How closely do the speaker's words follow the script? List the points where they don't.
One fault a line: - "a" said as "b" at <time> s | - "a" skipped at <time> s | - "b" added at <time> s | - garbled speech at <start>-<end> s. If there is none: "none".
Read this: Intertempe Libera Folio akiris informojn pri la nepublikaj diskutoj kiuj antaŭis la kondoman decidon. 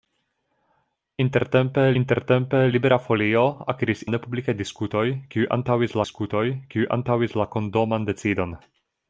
- "intertempe" added at 2.0 s
- "informojn pri la nepublikaj" said as "la nepublikaj diskutoj kiuj antaŭis" at 4.0 s